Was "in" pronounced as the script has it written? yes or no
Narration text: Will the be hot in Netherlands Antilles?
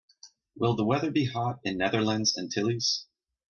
yes